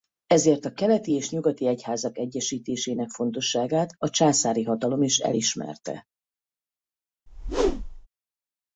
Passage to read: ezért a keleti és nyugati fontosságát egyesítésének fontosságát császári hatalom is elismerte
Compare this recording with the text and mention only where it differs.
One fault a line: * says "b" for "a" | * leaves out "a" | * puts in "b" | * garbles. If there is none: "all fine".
* says "egyházak" for "fontosságát"
* puts in "a"